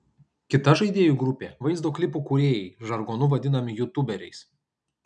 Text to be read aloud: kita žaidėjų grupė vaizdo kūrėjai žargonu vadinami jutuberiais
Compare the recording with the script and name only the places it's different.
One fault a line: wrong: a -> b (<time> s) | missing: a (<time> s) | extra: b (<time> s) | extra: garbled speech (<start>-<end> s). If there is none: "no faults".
extra: klipų (2.0 s)